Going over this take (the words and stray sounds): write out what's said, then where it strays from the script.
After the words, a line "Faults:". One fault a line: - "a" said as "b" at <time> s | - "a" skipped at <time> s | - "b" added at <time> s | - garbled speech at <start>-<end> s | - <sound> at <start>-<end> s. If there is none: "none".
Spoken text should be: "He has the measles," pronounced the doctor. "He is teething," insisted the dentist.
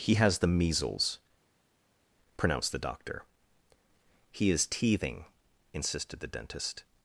"He has the measles," pronounced the doctor. "He is teething," insisted the dentist.
Faults:
none